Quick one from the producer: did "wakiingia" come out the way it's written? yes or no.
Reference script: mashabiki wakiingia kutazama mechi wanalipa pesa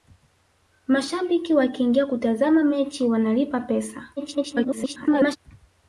yes